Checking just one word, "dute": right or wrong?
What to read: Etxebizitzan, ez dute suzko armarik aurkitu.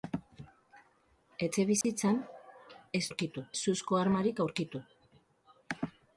wrong